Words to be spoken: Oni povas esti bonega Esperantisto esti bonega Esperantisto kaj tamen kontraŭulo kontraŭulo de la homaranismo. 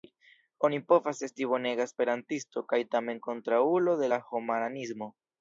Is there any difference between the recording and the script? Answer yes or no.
yes